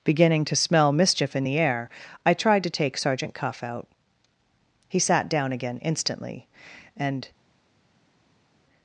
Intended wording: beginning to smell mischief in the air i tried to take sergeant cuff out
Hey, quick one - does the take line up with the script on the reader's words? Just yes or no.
no